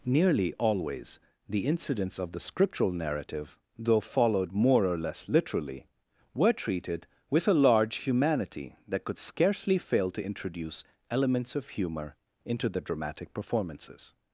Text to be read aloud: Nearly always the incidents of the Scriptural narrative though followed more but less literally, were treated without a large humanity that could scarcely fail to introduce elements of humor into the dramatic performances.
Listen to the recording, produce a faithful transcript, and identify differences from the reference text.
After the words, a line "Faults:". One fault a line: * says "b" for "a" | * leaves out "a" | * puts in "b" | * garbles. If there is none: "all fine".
Nearly always the incidents of the Scriptural narrative though followed more or less literally, were treated with a large humanity that could scarcely fail to introduce elements of humor into the dramatic performances.
Faults:
* says "or" for "but"
* says "with" for "without"